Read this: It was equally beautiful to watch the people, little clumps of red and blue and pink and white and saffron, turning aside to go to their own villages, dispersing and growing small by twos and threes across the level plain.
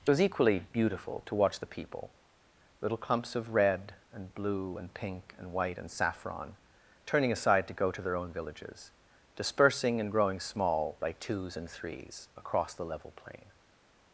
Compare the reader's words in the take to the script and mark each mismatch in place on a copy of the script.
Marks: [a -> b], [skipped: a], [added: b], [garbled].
It was equally beautiful to watch the people, little clumps of red and blue and pink and white and saffron, turning aside to go to their own villages, dispersing and growing small by twos and threes across the level plain.